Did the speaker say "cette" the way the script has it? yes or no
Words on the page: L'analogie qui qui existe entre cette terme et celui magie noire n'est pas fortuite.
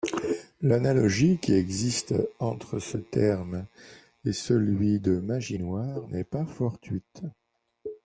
no